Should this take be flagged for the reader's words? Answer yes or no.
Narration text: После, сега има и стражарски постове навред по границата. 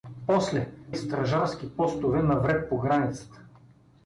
yes